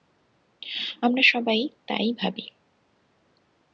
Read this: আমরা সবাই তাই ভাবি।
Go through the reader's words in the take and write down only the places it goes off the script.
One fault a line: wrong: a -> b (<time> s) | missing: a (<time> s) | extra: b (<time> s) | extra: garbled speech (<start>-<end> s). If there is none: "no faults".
no faults